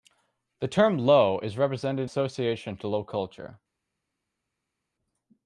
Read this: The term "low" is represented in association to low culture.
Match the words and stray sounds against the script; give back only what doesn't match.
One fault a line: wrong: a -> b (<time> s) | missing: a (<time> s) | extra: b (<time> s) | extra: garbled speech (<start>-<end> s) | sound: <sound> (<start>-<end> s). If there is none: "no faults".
missing: in (2.1 s)